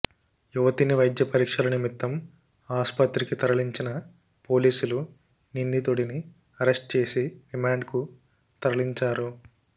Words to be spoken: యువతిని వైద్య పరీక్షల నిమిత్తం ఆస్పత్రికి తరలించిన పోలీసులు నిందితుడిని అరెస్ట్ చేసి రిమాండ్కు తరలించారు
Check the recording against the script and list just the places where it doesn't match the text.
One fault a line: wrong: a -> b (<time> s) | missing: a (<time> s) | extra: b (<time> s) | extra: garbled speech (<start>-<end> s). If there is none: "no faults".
no faults